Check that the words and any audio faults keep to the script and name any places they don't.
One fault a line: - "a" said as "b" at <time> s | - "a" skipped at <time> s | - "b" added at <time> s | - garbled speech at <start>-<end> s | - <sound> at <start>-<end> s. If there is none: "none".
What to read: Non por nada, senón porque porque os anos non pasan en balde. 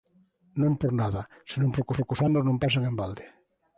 none